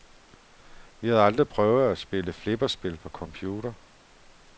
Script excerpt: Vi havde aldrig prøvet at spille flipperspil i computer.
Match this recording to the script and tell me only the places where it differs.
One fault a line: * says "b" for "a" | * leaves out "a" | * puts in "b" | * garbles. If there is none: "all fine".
* says "på" for "i"